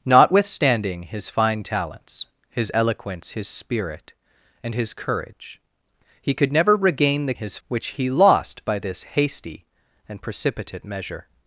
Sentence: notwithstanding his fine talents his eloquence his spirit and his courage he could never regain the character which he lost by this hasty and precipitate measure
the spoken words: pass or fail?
fail